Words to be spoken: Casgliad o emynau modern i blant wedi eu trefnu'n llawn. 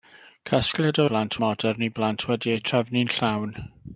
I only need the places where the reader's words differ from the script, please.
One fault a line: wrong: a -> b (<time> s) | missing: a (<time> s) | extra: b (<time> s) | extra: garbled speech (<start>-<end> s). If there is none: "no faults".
wrong: emynau -> blant (1.1 s)